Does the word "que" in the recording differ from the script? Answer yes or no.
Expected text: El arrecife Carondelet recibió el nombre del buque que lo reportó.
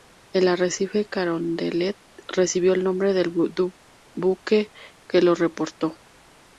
no